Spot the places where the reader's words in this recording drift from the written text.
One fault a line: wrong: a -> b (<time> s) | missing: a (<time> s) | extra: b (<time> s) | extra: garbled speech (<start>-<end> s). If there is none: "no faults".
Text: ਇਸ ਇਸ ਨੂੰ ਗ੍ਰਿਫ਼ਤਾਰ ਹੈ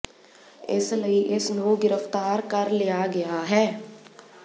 extra: ਲਈ (0.9 s)
extra: ਕਰ ਲਿਆ ਗਿਆ (2.5 s)